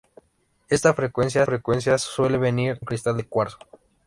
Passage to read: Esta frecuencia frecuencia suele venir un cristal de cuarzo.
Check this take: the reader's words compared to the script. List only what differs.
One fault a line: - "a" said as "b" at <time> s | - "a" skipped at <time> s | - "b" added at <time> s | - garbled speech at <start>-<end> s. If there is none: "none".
none